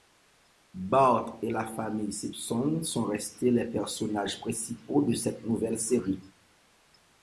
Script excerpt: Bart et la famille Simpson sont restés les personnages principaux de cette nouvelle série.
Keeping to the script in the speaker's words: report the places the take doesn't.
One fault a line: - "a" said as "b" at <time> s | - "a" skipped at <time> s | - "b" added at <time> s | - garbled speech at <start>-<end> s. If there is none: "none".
none